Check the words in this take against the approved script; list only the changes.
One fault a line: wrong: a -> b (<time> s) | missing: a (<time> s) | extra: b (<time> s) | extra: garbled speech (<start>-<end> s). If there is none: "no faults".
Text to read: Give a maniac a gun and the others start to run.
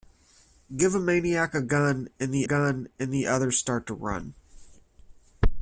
extra: gun and the (2.4 s)